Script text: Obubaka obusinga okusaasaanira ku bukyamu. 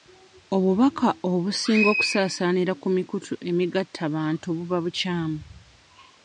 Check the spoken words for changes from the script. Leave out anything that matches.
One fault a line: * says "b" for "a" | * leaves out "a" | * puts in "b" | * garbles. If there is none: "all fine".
* puts in "mikutu emigattabantu buba"